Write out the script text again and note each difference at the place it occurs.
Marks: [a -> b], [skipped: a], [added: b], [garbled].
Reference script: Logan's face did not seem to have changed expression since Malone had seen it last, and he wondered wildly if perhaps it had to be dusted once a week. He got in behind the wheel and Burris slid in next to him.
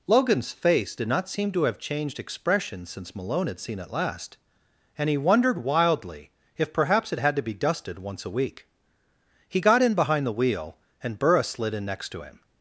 Logan's face did not seem to have changed expression since Malone had seen it last, and he wondered wildly if perhaps it had to be dusted once a week. He got in behind the wheel and Burris slid in next to him.